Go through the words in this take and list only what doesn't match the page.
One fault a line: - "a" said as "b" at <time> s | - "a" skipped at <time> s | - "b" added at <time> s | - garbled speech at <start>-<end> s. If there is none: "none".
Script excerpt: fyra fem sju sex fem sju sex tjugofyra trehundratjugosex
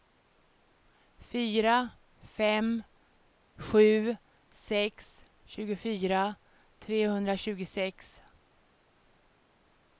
- "fem sju sex" skipped at 5.2 s